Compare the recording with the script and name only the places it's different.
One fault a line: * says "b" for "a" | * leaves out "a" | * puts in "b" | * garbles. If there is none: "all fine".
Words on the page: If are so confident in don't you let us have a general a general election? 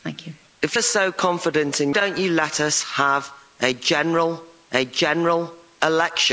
all fine